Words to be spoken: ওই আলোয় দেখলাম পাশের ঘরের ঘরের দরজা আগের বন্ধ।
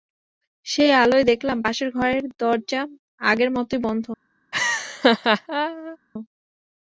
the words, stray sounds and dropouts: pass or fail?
fail